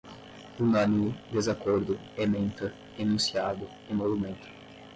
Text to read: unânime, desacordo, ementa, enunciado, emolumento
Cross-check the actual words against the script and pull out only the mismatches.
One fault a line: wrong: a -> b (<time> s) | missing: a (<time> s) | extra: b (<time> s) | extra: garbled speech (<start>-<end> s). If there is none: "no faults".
no faults